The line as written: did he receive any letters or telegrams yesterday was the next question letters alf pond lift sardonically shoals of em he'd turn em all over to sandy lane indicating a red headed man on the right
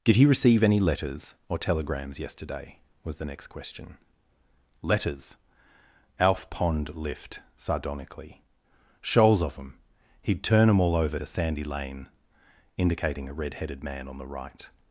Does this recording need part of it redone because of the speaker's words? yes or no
no